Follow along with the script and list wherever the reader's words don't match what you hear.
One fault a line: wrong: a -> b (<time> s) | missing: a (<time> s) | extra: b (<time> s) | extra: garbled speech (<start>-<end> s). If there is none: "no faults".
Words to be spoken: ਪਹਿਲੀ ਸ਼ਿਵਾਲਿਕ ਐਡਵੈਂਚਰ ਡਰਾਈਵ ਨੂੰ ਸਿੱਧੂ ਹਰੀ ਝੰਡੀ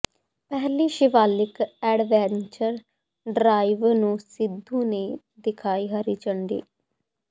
extra: ਨੇ ਦਿਖਾਈ (4.8 s)